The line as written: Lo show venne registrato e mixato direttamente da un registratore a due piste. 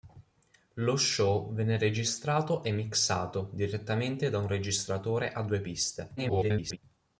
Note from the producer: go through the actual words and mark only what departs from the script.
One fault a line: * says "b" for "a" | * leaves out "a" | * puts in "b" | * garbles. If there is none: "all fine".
* garbles